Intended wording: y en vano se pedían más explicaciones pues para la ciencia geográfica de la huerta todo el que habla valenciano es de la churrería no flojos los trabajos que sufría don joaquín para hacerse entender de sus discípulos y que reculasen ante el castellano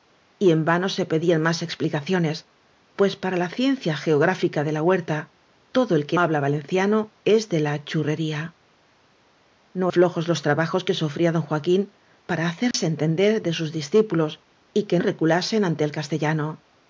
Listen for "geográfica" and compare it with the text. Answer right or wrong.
right